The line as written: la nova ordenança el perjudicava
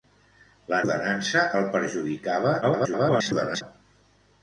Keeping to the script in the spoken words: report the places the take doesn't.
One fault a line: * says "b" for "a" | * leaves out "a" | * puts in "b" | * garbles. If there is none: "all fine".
* leaves out "nova"
* garbles